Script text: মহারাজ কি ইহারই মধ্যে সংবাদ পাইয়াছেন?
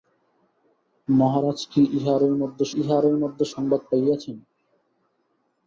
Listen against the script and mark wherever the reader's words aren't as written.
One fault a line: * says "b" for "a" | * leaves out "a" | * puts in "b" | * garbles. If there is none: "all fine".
* puts in "ইহারই মধ্যে"